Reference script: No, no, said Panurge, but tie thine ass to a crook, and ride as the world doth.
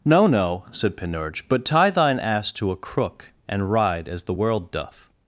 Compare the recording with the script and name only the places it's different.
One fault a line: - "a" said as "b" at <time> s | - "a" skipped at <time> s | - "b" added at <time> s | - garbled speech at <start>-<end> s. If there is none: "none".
none